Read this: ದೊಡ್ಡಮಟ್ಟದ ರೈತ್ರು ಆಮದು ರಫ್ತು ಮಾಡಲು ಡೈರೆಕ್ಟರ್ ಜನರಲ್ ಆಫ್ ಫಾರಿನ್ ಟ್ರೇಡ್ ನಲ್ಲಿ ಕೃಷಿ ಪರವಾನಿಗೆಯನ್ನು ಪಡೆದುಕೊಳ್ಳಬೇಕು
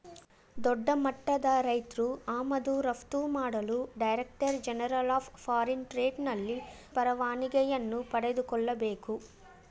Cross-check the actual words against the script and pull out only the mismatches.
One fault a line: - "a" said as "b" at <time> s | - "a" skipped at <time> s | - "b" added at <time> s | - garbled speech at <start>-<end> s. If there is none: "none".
- "ಕೃಷಿ" skipped at 6.6 s